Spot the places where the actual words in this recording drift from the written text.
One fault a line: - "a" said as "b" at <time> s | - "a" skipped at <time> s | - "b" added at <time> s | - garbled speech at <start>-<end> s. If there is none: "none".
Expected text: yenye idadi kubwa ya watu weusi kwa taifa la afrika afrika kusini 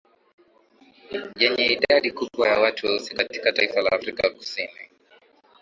- "kwa" said as "katika" at 3.1 s
- "afrika" skipped at 4.3 s